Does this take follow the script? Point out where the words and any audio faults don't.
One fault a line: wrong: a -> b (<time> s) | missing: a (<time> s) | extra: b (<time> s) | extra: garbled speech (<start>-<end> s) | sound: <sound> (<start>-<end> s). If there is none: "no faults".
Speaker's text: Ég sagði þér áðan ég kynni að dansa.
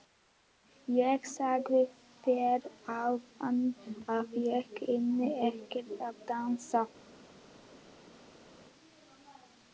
extra: að (4.2 s)
extra: ekkert (5.5 s)